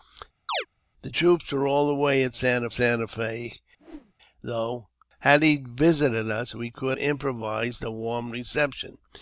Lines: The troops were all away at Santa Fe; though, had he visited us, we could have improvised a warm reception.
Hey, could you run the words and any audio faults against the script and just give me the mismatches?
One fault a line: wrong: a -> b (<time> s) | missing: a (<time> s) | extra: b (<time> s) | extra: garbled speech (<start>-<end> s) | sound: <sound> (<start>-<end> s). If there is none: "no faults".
sound: chirp (0.5-0.7 s)
extra: Santa (2.7 s)
sound: whoosh (3.8-4.1 s)
missing: have (7.0 s)